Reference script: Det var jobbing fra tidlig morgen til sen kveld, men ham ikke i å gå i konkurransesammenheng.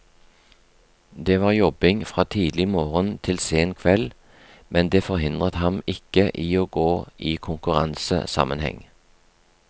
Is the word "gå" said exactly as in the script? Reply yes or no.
yes